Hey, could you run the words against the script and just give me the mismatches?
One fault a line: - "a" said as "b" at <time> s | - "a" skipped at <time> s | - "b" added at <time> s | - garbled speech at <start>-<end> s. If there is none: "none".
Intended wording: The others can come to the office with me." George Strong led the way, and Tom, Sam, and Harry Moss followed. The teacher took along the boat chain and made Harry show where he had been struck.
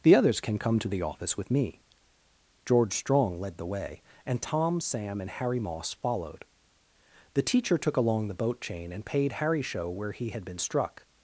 - "made" said as "paid" at 9.1 s